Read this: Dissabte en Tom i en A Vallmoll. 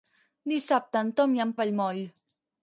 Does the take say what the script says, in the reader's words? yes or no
yes